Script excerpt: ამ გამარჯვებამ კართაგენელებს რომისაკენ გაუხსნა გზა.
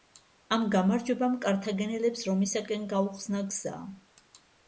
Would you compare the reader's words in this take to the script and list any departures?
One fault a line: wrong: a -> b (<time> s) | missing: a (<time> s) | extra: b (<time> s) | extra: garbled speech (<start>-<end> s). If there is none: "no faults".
no faults